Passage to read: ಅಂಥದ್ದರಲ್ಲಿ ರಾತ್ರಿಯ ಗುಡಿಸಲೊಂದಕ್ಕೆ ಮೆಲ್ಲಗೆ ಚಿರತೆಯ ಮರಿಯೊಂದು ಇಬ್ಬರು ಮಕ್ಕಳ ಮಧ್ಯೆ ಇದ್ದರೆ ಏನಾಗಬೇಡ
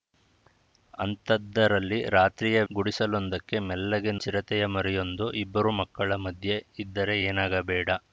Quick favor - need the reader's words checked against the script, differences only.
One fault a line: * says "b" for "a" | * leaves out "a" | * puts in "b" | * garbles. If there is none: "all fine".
all fine